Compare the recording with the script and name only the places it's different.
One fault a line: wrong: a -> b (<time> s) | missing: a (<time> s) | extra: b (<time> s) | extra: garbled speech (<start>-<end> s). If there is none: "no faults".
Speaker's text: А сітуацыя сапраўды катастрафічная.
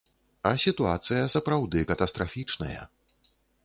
no faults